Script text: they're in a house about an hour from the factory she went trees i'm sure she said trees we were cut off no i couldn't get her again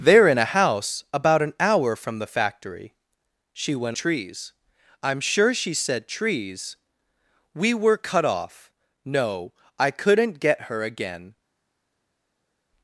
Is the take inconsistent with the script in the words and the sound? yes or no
no